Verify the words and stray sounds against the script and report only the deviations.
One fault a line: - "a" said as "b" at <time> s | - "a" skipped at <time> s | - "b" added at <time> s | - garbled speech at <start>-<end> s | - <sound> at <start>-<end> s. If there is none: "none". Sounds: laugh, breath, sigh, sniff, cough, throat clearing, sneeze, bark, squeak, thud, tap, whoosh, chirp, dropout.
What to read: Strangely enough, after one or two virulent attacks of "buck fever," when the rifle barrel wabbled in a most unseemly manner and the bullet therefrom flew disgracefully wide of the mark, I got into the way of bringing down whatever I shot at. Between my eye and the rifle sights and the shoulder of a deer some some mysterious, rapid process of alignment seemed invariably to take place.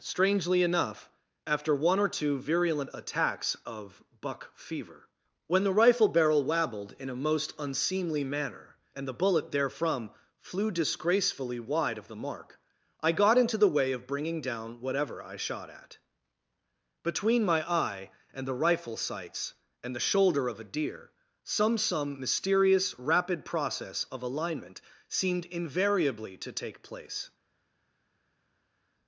none